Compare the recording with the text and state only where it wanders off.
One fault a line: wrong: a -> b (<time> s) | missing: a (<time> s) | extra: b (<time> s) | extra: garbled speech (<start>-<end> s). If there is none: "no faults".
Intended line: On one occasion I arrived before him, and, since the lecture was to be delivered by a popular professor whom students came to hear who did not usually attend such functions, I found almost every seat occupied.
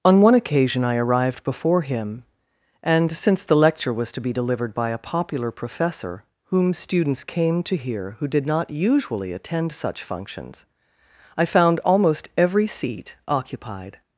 no faults